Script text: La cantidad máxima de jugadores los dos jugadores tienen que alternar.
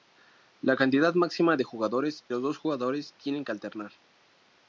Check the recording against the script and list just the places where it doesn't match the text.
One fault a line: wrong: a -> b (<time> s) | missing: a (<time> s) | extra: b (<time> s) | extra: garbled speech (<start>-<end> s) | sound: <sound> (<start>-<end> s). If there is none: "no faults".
no faults